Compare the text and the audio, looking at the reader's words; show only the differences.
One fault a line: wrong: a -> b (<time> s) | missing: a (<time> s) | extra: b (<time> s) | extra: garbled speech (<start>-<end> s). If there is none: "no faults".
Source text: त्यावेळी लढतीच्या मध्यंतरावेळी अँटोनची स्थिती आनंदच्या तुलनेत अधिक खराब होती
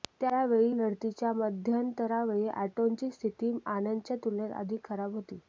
no faults